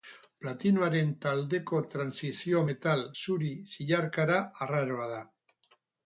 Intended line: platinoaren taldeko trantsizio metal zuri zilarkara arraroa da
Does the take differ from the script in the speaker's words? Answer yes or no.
no